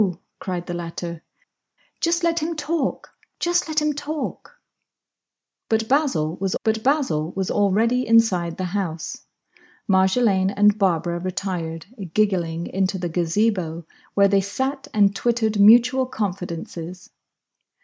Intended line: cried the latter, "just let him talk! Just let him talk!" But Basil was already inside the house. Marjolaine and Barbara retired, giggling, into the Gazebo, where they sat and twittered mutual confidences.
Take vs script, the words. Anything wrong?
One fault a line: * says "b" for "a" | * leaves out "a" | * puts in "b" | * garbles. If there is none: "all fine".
* puts in "but Basil was"